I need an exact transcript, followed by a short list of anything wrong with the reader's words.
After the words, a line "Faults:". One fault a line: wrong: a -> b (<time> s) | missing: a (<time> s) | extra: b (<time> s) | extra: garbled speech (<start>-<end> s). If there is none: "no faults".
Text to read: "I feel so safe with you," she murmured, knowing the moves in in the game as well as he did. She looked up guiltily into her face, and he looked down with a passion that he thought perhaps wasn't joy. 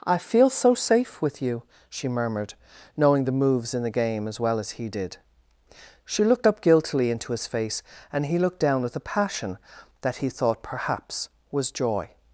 "I feel so safe with you," she murmured, knowing the moves in the game as well as he did. She looked up guiltily into his face, and he looked down with a passion that he thought perhaps was joy.
Faults:
missing: in (3.8 s)
wrong: her -> his (7.3 s)
wrong: wasn't -> was (11.5 s)